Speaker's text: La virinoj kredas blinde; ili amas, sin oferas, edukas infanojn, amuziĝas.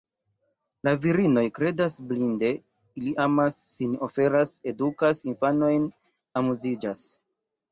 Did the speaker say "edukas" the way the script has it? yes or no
yes